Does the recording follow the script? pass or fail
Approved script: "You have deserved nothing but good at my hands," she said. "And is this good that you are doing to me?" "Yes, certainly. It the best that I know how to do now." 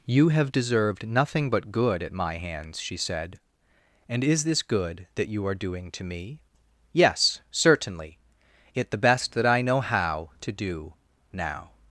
pass